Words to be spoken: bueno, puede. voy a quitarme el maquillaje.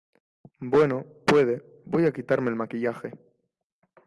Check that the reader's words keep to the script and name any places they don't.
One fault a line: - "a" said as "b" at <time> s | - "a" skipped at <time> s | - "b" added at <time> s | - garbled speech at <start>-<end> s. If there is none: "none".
none